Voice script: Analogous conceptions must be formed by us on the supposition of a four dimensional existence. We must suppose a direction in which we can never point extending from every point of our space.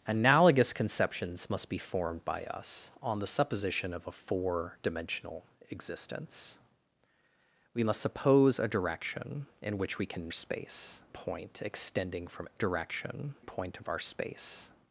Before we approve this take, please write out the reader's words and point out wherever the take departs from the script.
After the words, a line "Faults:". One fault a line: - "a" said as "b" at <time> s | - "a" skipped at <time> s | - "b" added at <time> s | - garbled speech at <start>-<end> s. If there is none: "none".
Analogous conceptions must be formed by us on the supposition of a four dimensional existence. We must suppose a direction in which we can space point extending from direction point of our space.
Faults:
- "never" said as "space" at 10.3 s
- "every" said as "direction" at 12.6 s